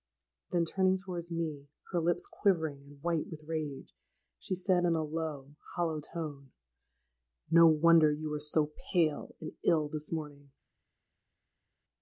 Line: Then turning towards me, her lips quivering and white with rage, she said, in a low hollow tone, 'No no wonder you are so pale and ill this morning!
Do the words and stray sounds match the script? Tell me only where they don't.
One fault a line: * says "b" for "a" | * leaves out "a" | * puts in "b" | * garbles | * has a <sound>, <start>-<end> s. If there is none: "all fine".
* leaves out "no"